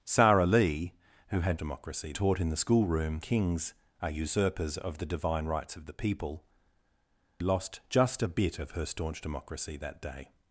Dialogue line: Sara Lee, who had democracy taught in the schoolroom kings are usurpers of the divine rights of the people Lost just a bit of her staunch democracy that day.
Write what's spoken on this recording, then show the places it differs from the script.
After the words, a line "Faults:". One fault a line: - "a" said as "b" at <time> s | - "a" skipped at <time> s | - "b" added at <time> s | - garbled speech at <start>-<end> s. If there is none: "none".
Sara Lee, who had democracy taught in the schoolroom kings are usurpers of the divine rights of the people Lost just a bit of her staunch democracy that day.
Faults:
none